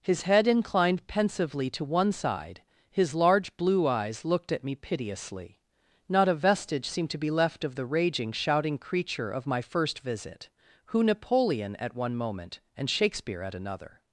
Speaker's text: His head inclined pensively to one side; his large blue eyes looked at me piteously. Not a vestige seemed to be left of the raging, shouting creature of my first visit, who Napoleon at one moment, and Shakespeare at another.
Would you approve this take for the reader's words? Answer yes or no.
yes